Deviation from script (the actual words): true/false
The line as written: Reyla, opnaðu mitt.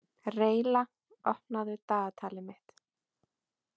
true